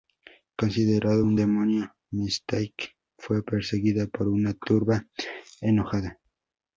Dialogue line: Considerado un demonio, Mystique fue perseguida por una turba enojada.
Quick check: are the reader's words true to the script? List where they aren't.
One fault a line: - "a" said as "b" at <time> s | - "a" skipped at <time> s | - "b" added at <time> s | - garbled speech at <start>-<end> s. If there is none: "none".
none